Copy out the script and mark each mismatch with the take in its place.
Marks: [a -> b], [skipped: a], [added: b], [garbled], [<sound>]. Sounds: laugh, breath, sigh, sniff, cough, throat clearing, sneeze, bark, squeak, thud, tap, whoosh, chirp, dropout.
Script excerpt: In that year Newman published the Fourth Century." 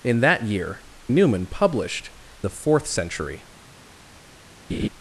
In that year Newman published the Fourth Century." [laugh]